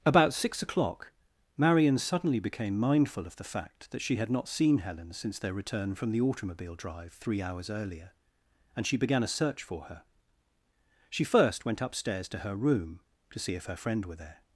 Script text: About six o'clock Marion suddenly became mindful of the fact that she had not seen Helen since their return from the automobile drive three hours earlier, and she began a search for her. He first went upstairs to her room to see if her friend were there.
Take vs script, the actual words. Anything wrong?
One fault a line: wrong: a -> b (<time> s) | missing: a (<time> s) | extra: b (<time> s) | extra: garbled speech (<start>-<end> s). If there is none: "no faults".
wrong: He -> She (11.1 s)